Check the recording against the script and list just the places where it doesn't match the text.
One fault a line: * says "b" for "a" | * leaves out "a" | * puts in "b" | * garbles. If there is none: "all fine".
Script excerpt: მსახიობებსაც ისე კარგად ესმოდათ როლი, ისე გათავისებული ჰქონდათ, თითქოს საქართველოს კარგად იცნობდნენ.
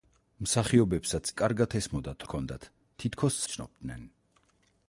* leaves out "ისე"
* leaves out "როლი ისე გათავისებული"
* leaves out "საქართველოს კარგად"